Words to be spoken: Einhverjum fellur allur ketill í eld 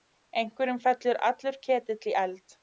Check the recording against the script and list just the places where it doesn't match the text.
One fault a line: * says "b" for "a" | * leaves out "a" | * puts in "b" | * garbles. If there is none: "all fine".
all fine